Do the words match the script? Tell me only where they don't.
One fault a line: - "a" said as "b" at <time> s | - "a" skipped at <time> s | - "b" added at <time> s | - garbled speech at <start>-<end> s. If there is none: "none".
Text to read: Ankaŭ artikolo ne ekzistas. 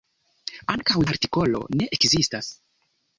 none